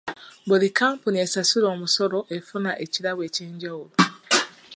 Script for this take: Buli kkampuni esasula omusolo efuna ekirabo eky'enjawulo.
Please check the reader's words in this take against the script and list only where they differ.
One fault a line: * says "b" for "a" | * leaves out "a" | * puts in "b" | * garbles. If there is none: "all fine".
all fine